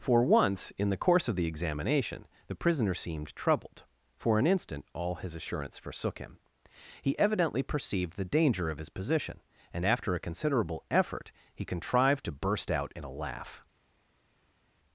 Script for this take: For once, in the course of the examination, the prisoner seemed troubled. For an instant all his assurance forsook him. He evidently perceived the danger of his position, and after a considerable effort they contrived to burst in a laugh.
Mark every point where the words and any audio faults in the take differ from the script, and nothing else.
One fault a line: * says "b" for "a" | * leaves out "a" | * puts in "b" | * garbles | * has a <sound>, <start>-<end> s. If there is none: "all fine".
* says "he" for "they"
* puts in "out"